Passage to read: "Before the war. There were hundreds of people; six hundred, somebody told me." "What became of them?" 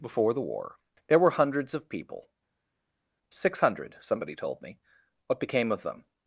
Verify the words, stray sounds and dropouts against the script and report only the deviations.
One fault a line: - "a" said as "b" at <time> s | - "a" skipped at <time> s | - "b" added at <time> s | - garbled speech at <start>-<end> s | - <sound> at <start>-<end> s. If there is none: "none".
none